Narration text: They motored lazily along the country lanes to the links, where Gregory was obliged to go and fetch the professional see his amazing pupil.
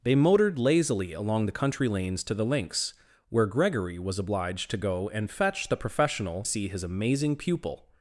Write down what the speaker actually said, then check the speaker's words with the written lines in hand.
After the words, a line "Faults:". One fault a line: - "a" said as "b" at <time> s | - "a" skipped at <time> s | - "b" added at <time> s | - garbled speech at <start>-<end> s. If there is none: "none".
They motored lazily along the country lanes to the links, where Gregory was obliged to go and fetch the professional see his amazing pupil.
Faults:
none